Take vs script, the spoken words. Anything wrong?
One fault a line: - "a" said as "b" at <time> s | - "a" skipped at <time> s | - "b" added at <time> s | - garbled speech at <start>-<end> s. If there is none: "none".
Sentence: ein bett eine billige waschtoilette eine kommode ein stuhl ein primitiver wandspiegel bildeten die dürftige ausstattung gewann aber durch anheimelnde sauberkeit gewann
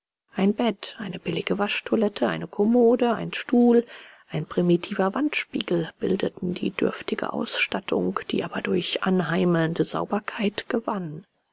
- "gewann" said as "die" at 8.3 s